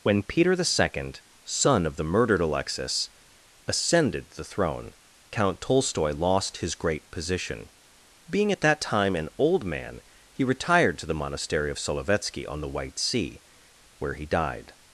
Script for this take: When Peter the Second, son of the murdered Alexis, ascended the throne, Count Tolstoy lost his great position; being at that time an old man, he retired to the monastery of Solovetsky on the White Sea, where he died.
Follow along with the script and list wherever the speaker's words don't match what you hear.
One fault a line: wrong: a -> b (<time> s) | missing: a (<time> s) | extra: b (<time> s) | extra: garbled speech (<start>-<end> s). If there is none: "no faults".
no faults